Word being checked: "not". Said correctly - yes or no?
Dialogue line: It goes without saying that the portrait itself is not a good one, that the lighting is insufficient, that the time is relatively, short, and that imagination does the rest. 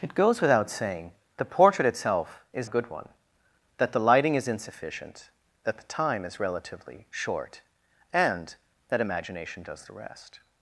no